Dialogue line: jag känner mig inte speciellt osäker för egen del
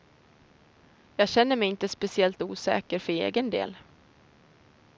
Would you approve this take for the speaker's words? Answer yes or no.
yes